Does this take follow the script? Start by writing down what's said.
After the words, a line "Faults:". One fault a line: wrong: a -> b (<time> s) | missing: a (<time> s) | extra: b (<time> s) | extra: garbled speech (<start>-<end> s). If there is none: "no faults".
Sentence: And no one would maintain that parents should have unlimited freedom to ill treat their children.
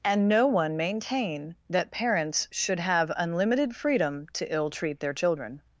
And no one maintain that parents should have unlimited freedom to ill treat their children.
Faults:
missing: would (0.8 s)